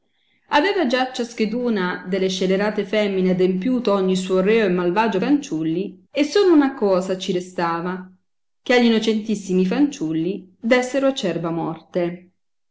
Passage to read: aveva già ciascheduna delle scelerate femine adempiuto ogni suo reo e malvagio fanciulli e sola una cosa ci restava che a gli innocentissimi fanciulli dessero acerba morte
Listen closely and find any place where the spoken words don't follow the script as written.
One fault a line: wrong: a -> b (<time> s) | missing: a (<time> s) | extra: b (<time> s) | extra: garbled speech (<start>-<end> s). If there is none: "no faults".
no faults